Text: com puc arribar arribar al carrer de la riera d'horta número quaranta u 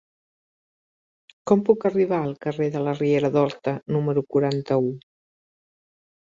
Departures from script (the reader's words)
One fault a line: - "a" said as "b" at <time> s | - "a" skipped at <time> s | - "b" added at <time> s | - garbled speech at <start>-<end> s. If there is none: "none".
- "arribar" skipped at 2.2 s